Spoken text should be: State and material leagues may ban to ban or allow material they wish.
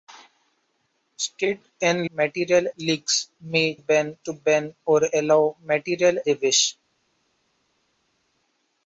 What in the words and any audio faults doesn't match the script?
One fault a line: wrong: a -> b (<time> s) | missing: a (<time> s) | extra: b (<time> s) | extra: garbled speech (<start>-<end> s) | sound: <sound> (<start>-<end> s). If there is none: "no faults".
no faults